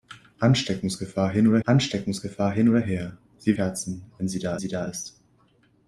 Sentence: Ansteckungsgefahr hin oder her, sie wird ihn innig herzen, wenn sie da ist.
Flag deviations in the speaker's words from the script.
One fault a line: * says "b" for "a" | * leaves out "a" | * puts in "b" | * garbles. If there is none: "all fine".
* says "ansteckungsgefahr hin oder her sie" for "her sie wird ihn innig"
* puts in "sie da"